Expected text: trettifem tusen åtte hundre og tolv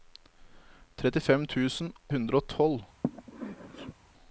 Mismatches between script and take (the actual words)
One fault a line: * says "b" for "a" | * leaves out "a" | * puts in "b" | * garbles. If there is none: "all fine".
* leaves out "åtte"